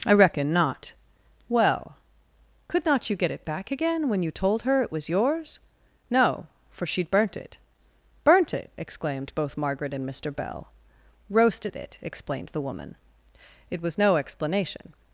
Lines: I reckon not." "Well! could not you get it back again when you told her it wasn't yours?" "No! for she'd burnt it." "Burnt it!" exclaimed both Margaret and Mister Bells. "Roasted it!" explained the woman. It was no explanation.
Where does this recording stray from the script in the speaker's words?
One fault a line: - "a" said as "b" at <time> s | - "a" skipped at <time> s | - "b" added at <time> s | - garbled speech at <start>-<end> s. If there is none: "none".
- "wasn't" said as "was" at 4.9 s
- "Bells" said as "Bell" at 10.3 s